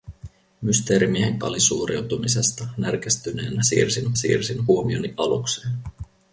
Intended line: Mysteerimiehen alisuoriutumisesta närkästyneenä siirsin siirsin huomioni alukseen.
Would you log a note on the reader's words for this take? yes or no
no